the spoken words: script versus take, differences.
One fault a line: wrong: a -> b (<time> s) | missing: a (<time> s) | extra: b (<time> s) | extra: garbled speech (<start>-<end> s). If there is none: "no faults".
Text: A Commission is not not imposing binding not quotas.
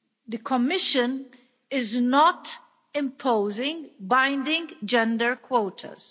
wrong: A -> The (0.3 s)
missing: not (2.6 s)
wrong: not -> gender (4.9 s)